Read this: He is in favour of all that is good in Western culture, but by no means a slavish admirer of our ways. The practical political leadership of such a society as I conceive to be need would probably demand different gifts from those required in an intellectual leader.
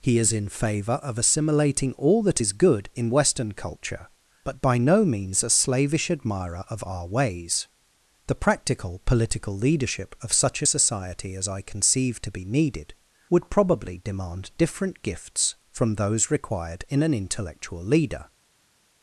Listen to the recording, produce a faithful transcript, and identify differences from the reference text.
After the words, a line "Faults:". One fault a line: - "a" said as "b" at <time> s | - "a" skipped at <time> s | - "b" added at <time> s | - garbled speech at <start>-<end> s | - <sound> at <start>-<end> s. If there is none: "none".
He is in favour of assimilating all that is good in Western culture, but by no means a slavish admirer of our ways. The practical political leadership of such a society as I conceive to be needed would probably demand different gifts from those required in an intellectual leader.
Faults:
- "assimilating" added at 1.2 s
- "need" said as "needed" at 12.4 s